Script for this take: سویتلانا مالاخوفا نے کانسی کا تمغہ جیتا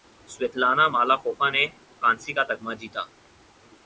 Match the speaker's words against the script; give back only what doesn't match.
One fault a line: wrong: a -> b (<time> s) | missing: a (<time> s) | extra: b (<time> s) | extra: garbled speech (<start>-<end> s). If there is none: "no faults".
no faults